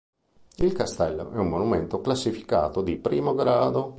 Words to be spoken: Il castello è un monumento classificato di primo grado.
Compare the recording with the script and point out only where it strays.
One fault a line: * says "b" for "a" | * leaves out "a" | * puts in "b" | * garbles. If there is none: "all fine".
all fine